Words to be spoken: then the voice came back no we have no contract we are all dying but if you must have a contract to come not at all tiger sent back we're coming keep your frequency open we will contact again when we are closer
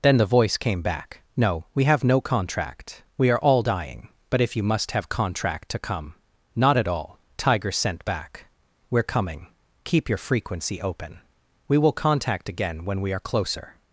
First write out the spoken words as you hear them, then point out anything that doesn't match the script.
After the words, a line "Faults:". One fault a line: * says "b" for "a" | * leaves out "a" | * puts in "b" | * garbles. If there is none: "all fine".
then the voice came back no we have no contract we are all dying but if you must have contract to come not at all tiger sent back we're coming keep your frequency open we will contact again when we are closer
Faults:
* leaves out "a"